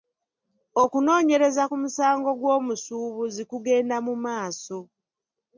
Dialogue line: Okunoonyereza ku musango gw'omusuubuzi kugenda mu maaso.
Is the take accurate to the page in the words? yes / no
yes